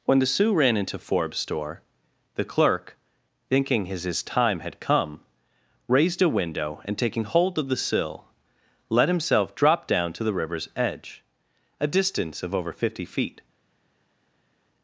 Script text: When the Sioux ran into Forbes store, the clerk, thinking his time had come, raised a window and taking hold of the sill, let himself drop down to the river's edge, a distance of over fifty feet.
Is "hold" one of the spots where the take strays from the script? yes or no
no